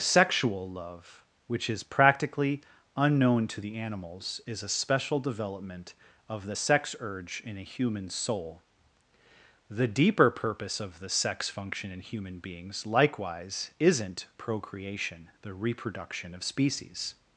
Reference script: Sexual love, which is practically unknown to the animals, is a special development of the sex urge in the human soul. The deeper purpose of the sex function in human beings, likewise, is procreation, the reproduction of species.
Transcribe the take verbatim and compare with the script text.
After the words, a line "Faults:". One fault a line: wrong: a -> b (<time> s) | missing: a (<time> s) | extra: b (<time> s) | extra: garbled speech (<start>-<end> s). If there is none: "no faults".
Sexual love, which is practically unknown to the animals, is a special development of the sex urge in a human soul. The deeper purpose of the sex function in human beings, likewise, isn't procreation, the reproduction of species.
Faults:
wrong: the -> a (7.6 s)
wrong: is -> isn't (13.8 s)